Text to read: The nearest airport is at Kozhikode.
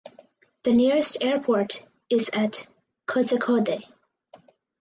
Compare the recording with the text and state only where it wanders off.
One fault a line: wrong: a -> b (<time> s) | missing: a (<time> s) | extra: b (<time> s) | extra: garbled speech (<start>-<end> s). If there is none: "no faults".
no faults